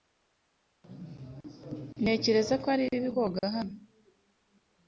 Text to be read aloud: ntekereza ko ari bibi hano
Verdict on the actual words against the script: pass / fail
fail